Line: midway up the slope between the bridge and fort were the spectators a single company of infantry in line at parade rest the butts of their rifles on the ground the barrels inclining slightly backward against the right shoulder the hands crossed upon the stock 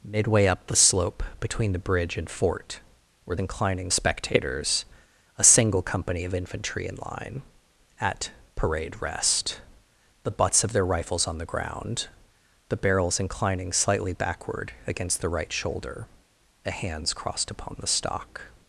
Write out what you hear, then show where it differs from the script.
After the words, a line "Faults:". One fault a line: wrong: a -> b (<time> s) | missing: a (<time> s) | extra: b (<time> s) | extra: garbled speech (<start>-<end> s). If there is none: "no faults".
midway up the slope between the bridge and fort were inclining spectators a single company of infantry in line at parade rest the butts of their rifles on the ground the barrels inclining slightly backward against the right shoulder the hands crossed upon the stock
Faults:
wrong: the -> inclining (3.4 s)